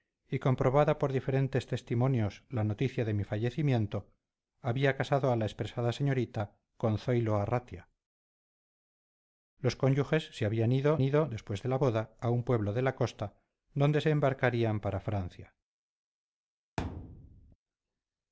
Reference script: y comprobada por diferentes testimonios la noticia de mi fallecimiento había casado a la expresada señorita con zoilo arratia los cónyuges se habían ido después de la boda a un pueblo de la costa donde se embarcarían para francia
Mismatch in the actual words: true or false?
true